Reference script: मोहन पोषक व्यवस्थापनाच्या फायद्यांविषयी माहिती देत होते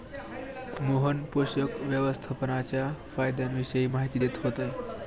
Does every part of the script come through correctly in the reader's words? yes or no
yes